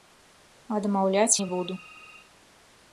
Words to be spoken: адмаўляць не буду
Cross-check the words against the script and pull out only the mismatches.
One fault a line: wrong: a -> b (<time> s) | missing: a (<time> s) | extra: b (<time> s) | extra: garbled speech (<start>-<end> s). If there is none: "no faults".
no faults